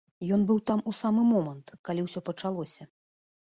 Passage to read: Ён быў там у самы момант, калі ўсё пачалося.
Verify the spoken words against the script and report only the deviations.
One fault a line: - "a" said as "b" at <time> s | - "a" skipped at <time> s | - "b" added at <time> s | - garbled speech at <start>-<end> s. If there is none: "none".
none